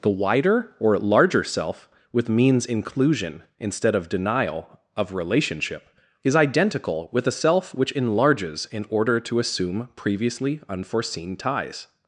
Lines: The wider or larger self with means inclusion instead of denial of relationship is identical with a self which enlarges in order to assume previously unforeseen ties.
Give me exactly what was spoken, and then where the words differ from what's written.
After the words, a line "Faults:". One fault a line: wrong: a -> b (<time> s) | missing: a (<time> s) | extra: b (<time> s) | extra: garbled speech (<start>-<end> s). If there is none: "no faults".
The wider or larger self with means inclusion instead of denial of relationship is identical with a self which enlarges in order to assume previously unforeseen ties.
Faults:
no faults